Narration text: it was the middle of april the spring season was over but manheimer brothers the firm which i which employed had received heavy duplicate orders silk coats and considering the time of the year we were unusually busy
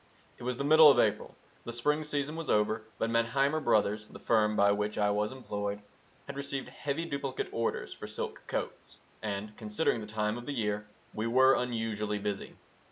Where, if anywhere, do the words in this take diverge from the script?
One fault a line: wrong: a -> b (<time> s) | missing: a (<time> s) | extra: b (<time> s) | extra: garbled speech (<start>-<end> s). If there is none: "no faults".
extra: by (4.5 s)
wrong: which -> was (5.1 s)
extra: for (7.9 s)